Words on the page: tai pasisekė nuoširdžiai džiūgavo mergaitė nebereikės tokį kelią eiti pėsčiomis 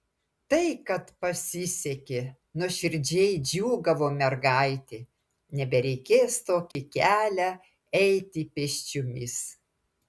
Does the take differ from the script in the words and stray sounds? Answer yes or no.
yes